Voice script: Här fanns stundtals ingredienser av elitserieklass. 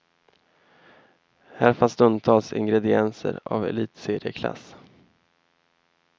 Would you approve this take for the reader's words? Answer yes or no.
yes